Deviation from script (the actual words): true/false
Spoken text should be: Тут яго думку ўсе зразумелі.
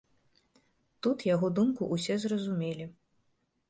false